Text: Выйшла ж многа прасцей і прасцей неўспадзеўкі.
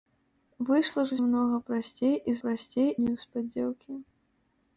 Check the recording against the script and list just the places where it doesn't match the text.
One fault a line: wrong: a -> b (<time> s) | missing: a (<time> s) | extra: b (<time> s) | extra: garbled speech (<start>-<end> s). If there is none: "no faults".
no faults